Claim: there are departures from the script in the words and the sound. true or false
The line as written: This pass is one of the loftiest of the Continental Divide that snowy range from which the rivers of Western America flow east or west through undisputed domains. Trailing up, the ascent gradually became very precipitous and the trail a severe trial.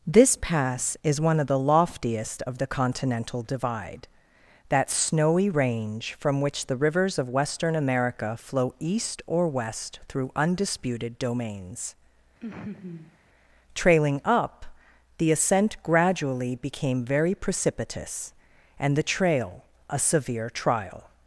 true